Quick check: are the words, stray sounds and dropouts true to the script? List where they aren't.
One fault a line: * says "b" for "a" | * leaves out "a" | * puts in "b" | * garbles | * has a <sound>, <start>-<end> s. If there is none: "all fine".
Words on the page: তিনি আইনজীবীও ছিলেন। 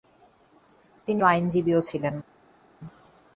all fine